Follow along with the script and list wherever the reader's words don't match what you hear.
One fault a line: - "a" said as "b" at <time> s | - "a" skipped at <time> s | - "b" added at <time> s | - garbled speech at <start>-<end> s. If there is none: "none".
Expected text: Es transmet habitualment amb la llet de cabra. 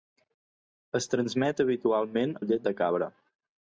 - "amb" skipped at 2.4 s